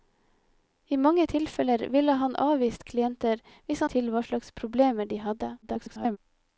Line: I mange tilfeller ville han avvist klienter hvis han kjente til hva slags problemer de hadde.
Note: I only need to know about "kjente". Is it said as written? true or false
false